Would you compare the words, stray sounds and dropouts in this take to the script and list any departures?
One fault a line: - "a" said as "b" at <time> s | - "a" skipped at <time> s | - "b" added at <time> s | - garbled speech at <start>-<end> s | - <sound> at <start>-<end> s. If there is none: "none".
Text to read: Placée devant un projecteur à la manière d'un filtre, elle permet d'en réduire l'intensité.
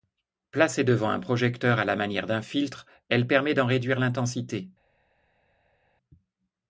none